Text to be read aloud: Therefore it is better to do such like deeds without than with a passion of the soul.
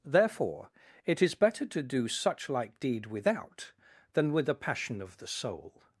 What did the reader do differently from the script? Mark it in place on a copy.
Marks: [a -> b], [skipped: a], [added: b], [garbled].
Therefore it is better to do such like [deeds -> deed] without than with a passion of the soul.